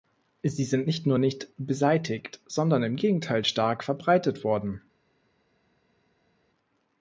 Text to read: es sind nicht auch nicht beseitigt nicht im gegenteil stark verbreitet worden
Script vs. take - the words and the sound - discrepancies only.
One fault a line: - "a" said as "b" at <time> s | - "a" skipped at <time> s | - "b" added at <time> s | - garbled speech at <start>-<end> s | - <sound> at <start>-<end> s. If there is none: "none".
- "es" said as "sie" at 0.4 s
- "auch" said as "nur" at 1.1 s
- "nicht" said as "sondern" at 2.4 s